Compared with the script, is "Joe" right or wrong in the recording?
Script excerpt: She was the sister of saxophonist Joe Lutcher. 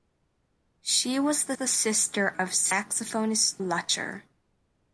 wrong